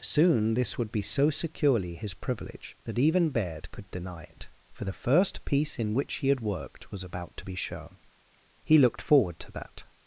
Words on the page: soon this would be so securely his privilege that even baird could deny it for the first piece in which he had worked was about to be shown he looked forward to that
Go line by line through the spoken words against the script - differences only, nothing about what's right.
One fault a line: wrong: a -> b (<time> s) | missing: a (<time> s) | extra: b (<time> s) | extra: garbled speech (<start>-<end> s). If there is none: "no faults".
no faults